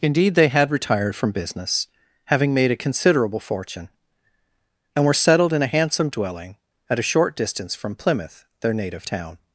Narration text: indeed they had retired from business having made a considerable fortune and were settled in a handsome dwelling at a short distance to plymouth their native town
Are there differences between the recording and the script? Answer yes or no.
yes